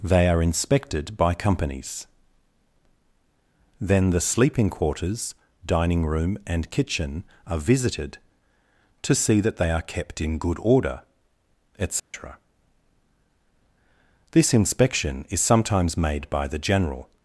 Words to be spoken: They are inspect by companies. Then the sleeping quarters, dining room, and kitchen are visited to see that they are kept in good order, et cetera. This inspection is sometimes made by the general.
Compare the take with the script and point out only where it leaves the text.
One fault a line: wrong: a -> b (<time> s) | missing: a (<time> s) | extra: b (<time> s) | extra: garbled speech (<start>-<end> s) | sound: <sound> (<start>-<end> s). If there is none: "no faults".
wrong: inspect -> inspected (0.4 s)
sound: dropout (12.0-12.1 s)